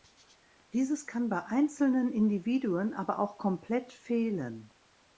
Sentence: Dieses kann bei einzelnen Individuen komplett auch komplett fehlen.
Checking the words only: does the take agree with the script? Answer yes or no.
no